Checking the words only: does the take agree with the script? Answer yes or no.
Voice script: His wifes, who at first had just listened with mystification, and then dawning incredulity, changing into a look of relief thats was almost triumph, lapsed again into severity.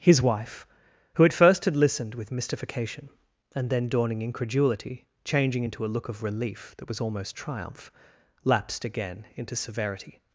no